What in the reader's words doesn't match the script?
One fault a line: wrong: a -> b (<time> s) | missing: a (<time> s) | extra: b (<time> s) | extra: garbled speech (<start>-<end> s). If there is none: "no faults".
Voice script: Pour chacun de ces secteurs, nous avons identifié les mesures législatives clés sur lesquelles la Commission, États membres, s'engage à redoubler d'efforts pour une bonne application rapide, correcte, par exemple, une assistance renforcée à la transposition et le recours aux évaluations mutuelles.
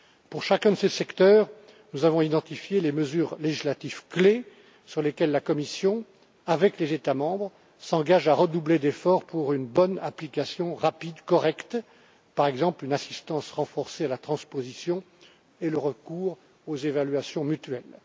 extra: avec les (6.5 s)